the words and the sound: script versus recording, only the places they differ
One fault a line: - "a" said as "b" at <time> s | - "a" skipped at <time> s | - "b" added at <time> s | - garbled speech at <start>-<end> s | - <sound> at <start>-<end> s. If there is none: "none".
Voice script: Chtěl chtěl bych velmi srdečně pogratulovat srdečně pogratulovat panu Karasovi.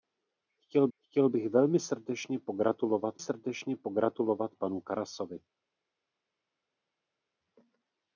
none